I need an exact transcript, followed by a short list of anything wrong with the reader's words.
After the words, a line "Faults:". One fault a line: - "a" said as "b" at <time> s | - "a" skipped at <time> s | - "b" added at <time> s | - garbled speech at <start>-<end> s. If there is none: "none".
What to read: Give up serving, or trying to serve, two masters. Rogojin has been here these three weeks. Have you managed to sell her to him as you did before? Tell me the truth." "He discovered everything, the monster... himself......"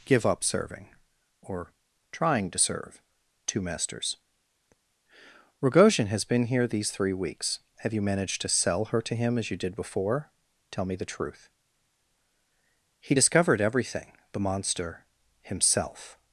Give up serving, or trying to serve, two masters. Rogojin has been here these three weeks. Have you managed to sell her to him as you did before? Tell me the truth." "He discovered everything, the monster... himself......"
Faults:
none